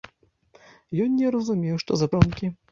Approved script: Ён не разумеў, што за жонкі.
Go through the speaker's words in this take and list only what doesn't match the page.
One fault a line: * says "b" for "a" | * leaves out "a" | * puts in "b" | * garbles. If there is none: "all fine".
all fine